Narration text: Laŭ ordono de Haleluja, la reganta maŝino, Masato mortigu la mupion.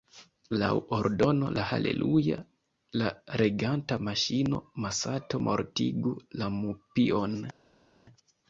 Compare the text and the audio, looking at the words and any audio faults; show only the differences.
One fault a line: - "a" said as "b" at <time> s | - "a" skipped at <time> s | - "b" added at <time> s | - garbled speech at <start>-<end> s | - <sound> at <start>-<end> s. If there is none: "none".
none